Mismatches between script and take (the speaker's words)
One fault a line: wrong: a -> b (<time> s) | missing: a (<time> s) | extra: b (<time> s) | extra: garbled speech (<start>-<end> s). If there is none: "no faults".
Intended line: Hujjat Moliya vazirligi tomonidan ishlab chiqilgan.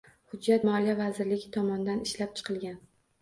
no faults